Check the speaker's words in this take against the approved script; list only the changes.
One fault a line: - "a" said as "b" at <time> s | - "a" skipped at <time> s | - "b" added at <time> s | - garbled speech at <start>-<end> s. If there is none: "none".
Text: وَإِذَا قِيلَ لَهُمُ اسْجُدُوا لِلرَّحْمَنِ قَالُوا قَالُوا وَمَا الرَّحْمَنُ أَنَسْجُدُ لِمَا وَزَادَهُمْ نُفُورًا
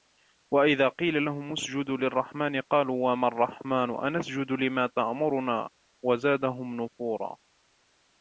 - "قَالُوا" skipped at 3.1 s
- "تَأْمُرُنَا" added at 4.9 s